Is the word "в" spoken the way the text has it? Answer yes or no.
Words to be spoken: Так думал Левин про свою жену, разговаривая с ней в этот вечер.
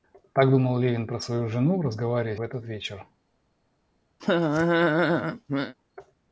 no